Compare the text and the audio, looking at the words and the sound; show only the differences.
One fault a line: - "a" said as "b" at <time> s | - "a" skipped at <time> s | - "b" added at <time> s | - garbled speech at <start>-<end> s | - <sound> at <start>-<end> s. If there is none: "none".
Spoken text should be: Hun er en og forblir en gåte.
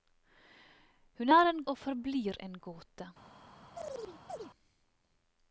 - chirp at 3.8-4.5 s